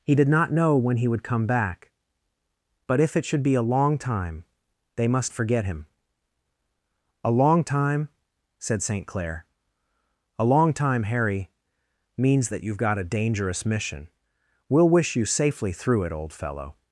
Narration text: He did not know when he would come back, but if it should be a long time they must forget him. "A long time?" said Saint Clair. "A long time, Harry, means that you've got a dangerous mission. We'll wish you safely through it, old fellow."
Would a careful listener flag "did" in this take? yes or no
no